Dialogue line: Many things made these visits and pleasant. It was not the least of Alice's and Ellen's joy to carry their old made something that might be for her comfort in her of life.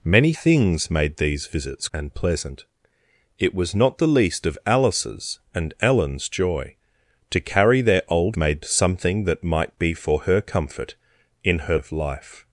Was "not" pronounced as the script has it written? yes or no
yes